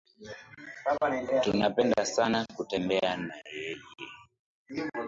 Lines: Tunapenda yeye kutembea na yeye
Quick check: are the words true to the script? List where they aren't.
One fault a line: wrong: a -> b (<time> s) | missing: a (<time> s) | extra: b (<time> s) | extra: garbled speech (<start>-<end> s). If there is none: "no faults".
wrong: yeye -> sana (2.0 s)